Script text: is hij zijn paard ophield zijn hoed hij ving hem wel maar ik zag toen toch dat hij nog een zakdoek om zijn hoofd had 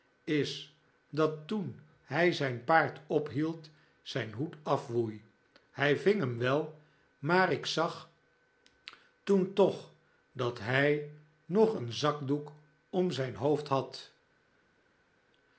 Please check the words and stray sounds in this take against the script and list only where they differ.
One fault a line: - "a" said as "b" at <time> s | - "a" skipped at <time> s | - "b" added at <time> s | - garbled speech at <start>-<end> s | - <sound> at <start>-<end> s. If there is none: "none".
- "dat toen" added at 1.1 s
- "afwoei" added at 4.6 s